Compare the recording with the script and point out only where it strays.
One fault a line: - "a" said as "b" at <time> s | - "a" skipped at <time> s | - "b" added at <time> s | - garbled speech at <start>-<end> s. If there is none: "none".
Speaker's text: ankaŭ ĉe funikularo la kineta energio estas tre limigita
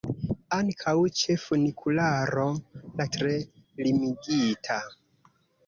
- "kineta energio estas" skipped at 3.1 s